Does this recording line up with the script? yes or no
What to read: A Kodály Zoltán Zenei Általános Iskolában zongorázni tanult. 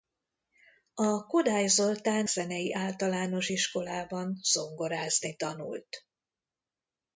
yes